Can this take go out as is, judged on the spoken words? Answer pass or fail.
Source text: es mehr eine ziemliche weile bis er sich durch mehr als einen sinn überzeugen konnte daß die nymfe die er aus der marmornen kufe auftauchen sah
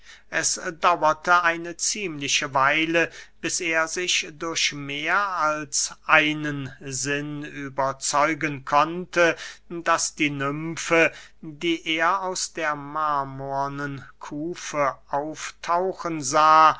fail